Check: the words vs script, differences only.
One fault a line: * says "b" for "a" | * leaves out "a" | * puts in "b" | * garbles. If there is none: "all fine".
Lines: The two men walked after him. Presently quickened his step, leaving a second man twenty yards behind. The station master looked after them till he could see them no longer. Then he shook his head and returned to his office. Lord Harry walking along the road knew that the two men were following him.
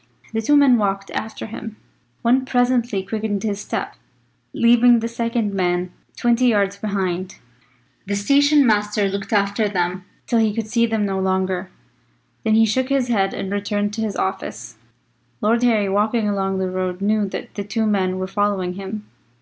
* puts in "One"
* says "the" for "a"